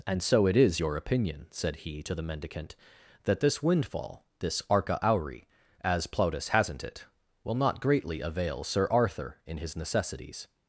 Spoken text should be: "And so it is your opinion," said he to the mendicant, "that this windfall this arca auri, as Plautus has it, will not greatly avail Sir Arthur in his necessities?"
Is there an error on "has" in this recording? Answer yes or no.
yes